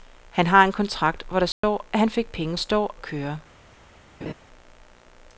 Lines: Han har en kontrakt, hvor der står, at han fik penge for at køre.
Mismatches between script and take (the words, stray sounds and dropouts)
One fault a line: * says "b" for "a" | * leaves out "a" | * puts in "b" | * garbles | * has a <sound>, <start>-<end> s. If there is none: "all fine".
* has a dropout, 1.5-1.6 s
* says "står" for "for"
* has a laugh, 4.2-4.3 s